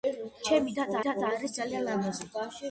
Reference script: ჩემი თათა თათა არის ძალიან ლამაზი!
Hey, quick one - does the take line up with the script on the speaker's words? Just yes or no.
yes